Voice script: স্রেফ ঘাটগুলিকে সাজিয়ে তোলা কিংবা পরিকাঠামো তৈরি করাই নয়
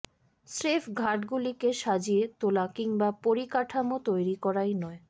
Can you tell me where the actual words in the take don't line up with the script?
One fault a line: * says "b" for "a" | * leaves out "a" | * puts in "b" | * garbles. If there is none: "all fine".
all fine